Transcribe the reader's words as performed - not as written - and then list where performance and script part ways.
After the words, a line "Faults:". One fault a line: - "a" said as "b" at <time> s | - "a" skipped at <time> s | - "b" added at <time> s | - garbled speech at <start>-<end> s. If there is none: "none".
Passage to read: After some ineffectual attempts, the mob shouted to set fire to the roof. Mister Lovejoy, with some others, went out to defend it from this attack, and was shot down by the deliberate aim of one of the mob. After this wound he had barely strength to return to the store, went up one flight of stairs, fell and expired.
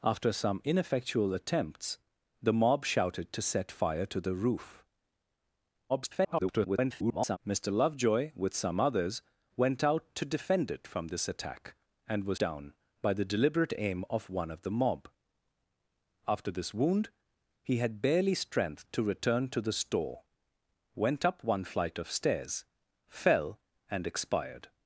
After some ineffectual attempts, the mob shouted to set fire to the roof. [garbled] Mister Lovejoy, with some others, went out to defend it from this attack, and was down by the deliberate aim of one of the mob. After this wound he had barely strength to return to the store, went up one flight of stairs, fell and expired.
Faults:
- garbled speech at 5.9-7.4 s
- "shot" skipped at 12.4 s